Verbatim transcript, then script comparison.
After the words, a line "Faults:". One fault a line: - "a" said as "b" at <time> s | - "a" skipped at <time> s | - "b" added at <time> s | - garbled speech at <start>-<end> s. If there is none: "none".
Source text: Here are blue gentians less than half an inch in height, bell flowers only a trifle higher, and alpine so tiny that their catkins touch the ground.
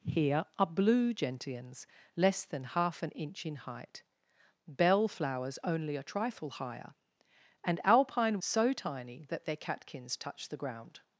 Here are blue gentians less than half an inch in height, bell flowers only a trifle higher, and alpine so tiny that their catkins touch the ground.
Faults:
none